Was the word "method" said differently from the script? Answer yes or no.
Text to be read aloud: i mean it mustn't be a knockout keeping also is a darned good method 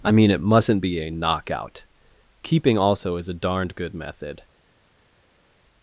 no